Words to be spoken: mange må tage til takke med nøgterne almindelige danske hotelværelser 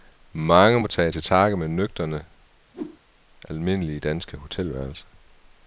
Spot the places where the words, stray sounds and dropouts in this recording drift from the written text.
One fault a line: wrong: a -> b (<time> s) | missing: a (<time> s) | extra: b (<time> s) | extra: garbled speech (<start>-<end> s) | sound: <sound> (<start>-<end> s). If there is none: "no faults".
sound: whoosh (2.7-3.0 s)